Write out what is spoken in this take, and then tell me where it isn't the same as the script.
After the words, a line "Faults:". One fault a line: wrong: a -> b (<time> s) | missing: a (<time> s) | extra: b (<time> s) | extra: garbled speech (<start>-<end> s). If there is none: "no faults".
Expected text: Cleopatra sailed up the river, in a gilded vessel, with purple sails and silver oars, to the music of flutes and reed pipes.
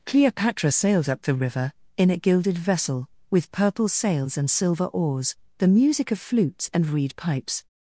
Cleopatra sailed up the river, in a gilded vessel, with purple sails and silver oars, the music of flutes and reed pipes.
Faults:
missing: to (5.4 s)